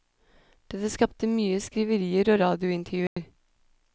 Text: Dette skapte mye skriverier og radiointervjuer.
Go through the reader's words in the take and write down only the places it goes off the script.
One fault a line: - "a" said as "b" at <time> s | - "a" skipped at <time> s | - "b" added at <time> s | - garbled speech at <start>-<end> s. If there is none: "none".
none